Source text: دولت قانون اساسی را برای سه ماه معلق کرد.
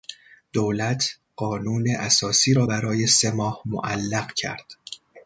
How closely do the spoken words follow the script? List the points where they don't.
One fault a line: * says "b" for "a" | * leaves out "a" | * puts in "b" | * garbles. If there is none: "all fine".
all fine